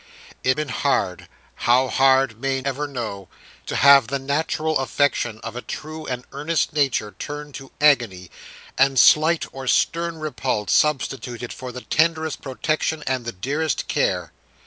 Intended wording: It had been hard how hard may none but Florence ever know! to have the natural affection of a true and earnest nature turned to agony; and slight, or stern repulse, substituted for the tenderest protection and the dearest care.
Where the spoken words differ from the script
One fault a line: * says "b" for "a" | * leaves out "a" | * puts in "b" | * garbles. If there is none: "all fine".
* leaves out "had"
* leaves out "none but Florence"